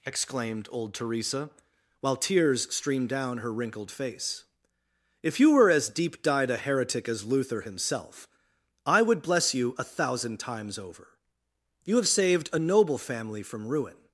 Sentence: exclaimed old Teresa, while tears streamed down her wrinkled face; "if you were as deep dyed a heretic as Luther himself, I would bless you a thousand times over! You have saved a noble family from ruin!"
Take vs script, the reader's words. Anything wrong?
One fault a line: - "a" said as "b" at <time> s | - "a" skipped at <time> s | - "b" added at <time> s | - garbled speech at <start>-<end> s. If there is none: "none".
none